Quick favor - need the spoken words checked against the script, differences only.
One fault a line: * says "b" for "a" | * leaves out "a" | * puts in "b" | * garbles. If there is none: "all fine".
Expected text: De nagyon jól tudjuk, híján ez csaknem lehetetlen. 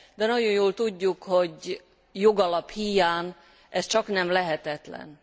* puts in "hogy jogalap"